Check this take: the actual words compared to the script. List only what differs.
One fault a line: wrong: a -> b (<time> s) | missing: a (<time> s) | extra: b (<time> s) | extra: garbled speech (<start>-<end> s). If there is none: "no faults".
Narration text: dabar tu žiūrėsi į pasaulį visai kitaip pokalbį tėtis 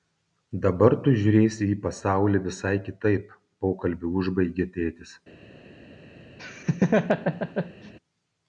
extra: užbaigė (4.2 s)